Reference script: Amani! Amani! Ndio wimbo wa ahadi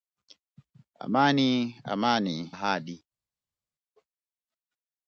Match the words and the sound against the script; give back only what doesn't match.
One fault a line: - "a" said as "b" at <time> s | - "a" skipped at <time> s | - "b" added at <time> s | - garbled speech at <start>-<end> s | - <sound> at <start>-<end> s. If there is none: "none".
- "Ndio wimbo wa" skipped at 2.5 s